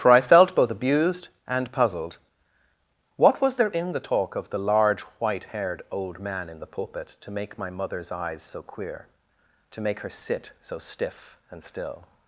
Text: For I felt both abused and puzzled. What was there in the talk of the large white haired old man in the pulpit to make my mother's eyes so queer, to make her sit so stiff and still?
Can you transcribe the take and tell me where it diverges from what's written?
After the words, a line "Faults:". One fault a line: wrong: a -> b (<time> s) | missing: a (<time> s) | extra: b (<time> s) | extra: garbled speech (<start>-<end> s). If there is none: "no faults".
For I felt both abused and puzzled. What was there in the talk of the large white haired old man in the pulpit to make my mother's eyes so queer, to make her sit so stiff and still?
Faults:
no faults